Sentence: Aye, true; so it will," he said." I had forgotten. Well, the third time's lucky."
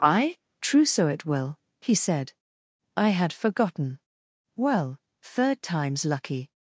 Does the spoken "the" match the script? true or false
false